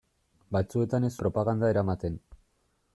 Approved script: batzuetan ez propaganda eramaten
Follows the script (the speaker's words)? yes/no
yes